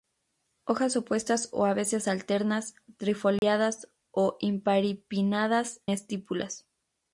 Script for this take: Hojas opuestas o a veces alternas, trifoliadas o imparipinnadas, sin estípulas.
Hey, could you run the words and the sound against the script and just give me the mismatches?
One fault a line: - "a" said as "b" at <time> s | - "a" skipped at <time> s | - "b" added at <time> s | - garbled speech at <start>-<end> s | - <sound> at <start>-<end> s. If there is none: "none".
- dropout at 3.4-3.4 s
- "sin" skipped at 5.8 s